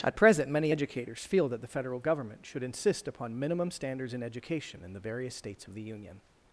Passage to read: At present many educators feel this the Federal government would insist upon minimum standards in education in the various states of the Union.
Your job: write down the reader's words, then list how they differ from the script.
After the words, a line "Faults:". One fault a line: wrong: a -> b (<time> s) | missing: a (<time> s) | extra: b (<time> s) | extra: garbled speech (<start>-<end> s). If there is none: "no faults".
At present many educators feel that the Federal government should insist upon minimum standards in education in the various states of the Union.
Faults:
wrong: this -> that (1.5 s)
wrong: would -> should (2.5 s)